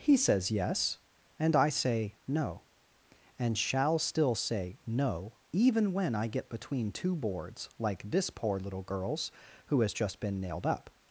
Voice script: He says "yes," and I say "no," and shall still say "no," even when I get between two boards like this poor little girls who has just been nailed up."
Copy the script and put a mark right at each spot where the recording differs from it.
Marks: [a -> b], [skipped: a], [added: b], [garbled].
He says "yes," and I say "no," and shall still say "no," even when I get between two boards like this poor little girls who has just been nailed up."